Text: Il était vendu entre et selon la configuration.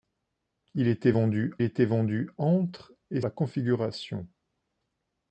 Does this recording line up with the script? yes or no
no